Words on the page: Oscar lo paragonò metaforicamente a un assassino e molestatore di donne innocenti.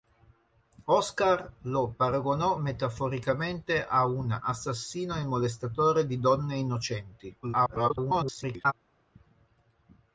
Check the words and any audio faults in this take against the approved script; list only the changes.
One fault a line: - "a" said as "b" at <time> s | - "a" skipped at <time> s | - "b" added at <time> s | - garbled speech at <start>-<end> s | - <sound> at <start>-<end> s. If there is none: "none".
- garbled speech at 7.4-8.7 s